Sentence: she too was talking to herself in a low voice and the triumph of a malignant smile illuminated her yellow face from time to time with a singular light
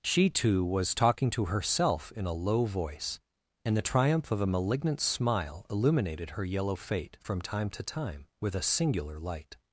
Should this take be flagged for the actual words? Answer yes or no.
yes